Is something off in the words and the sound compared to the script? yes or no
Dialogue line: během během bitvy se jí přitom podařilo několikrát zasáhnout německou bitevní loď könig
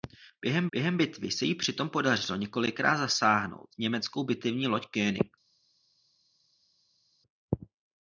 no